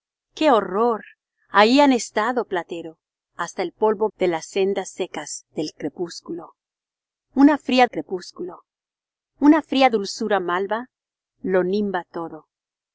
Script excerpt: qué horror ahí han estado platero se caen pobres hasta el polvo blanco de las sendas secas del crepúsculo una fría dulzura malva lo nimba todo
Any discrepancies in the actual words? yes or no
yes